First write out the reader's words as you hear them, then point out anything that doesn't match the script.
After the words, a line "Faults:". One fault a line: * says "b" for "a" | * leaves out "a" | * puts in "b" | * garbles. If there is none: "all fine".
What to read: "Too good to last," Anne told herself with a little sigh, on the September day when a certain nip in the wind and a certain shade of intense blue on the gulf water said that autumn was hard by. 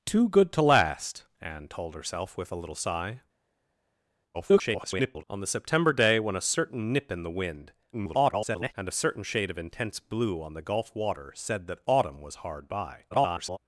"Too good to last," Anne told herself with a little sigh, [garbled] on the September day when a certain nip in the wind [garbled] and a certain shade of intense blue on the gulf water said that autumn was hard by. [garbled]
Faults:
* garbles
* garbles
* garbles